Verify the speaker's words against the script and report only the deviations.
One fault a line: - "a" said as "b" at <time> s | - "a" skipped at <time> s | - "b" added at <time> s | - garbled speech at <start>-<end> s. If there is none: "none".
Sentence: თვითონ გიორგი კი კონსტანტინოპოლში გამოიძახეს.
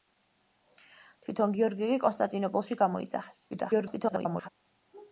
- garbled speech at 3.5-4.5 s